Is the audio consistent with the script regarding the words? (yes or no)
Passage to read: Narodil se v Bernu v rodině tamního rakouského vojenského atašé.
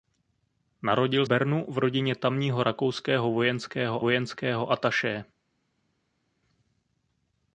no